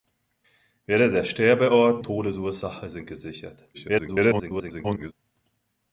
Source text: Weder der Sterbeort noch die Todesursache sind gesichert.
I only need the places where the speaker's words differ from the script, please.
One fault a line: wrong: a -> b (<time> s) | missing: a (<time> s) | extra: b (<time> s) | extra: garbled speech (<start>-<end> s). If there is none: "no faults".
missing: noch die (2.0 s)
extra: garbled speech (3.7-5.1 s)